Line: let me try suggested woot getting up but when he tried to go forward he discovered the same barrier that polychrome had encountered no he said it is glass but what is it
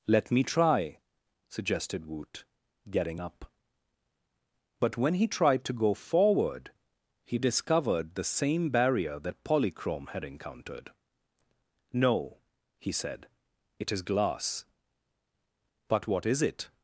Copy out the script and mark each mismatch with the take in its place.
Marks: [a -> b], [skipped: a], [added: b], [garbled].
let me try suggested woot getting up but when he tried to go forward he discovered the same barrier that polychrome had encountered no he said it is glass but what is it